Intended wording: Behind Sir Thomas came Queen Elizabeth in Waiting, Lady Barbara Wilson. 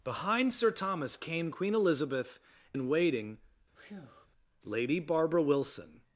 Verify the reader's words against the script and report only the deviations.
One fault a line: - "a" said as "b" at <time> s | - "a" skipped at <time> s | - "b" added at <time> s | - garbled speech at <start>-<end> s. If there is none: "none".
none